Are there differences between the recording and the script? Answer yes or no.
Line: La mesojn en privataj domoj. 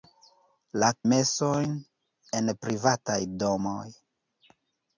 no